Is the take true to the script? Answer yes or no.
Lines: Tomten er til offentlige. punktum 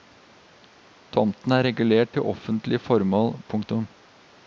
no